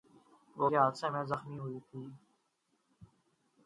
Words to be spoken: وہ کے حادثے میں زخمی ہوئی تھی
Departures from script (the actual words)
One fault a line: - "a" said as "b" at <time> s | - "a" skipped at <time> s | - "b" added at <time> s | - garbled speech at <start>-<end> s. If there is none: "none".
none